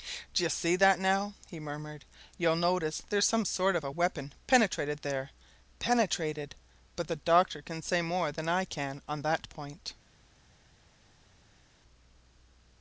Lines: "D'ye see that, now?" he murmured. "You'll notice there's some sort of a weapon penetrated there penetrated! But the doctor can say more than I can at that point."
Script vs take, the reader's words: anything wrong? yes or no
yes